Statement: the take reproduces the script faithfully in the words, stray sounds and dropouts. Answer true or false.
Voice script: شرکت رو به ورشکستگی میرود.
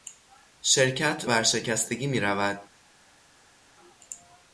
false